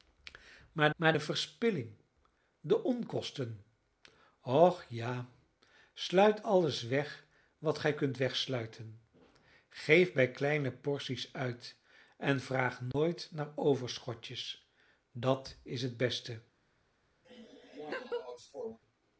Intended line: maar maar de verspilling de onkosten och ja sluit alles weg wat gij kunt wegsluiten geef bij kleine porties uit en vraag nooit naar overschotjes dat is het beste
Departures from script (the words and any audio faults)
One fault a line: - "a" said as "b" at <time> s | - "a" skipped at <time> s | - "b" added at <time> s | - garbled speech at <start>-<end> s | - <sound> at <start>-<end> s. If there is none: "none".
- dropout at 12.9-12.9 s
- laugh at 17.2-18.8 s